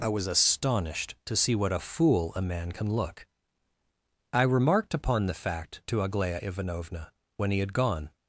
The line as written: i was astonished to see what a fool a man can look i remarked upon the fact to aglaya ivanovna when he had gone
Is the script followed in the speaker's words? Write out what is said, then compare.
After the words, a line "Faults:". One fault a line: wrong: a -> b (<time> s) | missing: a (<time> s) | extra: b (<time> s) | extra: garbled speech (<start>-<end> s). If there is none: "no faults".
i was astonished to see what a fool a man can look i remarked upon the fact to aglaya ivanovna when he had gone
Faults:
no faults